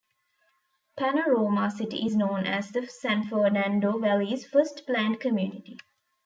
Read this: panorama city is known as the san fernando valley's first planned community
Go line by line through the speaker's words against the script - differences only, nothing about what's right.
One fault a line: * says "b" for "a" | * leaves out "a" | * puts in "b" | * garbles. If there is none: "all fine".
all fine